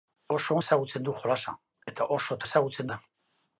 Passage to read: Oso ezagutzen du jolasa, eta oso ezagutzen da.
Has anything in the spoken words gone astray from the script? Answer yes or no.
no